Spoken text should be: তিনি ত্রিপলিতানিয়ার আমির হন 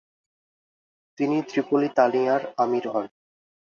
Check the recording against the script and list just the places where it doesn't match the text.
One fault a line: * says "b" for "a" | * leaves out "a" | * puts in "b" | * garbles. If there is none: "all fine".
all fine